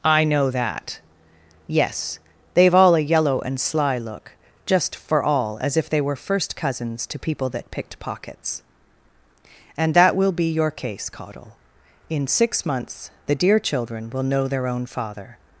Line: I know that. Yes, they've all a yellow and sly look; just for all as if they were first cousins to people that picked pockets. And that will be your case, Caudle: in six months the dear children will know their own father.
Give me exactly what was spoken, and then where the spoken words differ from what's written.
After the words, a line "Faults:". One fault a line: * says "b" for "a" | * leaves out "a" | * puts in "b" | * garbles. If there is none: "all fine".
I know that. Yes, they've all a yellow and sly look; just for all as if they were first cousins to people that picked pockets. And that will be your case, Caudle: in six months the dear children will know their own father.
Faults:
all fine